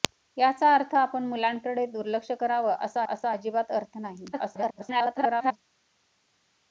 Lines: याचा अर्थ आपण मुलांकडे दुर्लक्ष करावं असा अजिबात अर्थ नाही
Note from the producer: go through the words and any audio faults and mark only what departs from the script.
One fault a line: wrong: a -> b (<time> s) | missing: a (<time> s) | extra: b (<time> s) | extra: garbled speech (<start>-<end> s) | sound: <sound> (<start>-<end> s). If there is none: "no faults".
extra: असा (3.1 s)
extra: garbled speech (4.3-5.6 s)